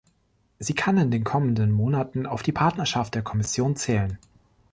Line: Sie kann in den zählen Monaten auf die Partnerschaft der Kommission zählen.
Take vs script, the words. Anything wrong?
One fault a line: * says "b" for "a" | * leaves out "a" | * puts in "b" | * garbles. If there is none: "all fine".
* says "kommenden" for "zählen"